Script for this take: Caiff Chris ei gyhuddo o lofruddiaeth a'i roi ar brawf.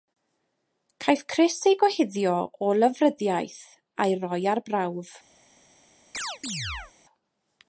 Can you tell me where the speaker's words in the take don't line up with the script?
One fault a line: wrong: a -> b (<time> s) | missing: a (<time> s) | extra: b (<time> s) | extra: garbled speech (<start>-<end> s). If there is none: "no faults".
no faults